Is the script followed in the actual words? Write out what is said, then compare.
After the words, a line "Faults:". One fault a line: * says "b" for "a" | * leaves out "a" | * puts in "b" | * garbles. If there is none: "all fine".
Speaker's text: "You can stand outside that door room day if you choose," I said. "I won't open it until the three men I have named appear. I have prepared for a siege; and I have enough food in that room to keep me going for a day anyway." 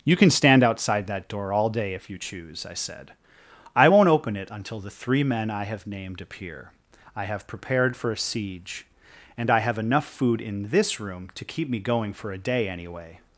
"You can stand outside that door all day if you choose," I said. "I won't open it until the three men I have named appear. I have prepared for a siege; and I have enough food in this room to keep me going for a day anyway."
Faults:
* says "all" for "room"
* says "this" for "that"